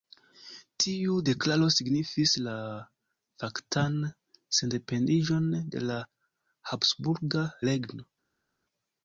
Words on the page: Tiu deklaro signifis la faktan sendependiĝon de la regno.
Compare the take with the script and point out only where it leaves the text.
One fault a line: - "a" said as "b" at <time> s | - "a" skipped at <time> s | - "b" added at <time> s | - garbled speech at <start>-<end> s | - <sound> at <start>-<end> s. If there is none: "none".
- "habsburga" added at 6.7 s